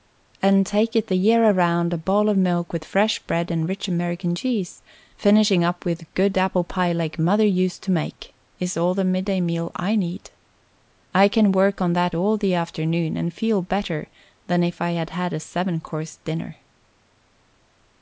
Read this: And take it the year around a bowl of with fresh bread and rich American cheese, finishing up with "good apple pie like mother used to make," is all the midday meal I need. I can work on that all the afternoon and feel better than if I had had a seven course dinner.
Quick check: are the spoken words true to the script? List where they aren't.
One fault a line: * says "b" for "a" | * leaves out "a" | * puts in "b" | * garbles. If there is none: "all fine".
* puts in "milk"